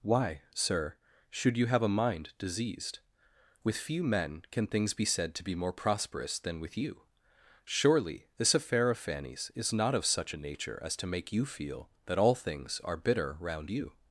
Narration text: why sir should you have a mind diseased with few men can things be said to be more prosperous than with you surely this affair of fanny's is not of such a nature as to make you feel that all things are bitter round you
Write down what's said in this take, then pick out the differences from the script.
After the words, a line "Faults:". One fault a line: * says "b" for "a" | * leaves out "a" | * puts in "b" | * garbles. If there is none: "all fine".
why sir should you have a mind diseased with few men can things be said to be more prosperous than with you surely this affair of fanny's is not of such a nature as to make you feel that all things are bitter round you
Faults:
all fine